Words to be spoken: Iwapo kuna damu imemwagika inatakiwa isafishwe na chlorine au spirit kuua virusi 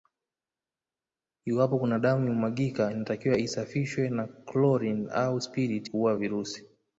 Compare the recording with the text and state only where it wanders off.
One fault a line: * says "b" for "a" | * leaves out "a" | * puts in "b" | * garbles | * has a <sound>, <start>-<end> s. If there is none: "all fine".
all fine